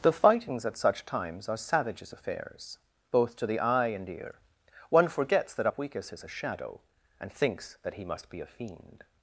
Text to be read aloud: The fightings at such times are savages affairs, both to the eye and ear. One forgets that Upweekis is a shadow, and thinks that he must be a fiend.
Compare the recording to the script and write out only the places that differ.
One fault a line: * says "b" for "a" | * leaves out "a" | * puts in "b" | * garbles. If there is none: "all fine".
all fine